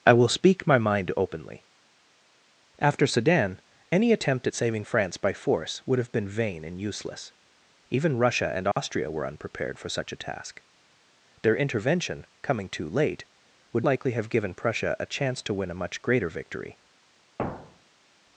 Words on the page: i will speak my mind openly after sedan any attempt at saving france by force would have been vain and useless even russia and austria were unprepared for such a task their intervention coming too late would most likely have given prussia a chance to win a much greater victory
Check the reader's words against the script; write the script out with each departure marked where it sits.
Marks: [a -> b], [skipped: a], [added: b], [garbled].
i will speak my mind openly after sedan any attempt at saving france by force would have been vain and useless even russia and austria were unprepared for such a task their intervention coming too late would [skipped: most] likely have given prussia a chance to win a much greater victory